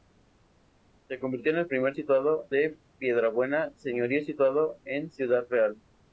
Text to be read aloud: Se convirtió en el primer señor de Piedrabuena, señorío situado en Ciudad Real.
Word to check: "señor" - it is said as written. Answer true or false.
false